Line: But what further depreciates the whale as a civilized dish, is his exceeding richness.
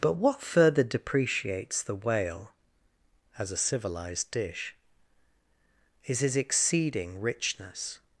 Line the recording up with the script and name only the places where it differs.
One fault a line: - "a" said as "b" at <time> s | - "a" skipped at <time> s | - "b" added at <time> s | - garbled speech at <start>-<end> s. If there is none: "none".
none